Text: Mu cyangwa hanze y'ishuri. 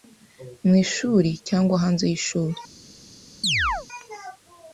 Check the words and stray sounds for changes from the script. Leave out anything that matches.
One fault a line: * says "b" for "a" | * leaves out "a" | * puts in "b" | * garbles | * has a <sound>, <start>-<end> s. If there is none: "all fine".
* puts in "ishuri"
* has a chirp, 3.4-3.9 s